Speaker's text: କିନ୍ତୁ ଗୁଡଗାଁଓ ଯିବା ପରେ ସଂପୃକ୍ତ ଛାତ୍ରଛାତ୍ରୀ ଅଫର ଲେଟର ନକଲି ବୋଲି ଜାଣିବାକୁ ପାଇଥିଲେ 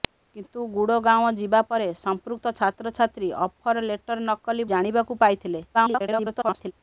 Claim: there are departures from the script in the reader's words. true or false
true